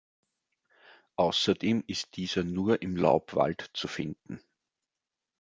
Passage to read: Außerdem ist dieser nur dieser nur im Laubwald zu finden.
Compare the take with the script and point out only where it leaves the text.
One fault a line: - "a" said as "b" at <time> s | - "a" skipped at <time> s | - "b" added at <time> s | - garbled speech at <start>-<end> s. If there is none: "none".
- "dieser nur" skipped at 2.8 s